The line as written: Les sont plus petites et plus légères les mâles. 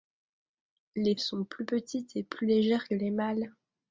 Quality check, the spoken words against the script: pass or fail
pass